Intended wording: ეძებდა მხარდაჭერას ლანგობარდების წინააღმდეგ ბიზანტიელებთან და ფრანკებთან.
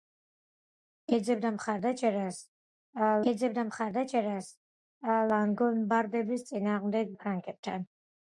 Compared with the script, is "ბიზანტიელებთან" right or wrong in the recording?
wrong